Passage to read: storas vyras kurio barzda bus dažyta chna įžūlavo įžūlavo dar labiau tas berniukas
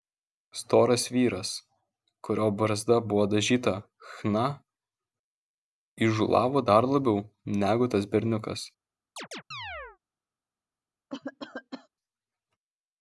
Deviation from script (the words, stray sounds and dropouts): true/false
true